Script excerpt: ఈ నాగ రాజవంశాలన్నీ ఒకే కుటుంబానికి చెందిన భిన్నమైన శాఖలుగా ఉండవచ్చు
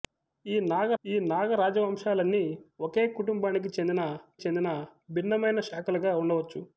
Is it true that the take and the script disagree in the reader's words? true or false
true